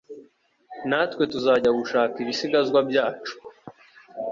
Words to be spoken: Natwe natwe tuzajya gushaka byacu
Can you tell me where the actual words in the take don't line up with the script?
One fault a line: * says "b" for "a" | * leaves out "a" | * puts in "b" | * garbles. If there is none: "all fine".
* leaves out "natwe"
* puts in "ibisigazwa"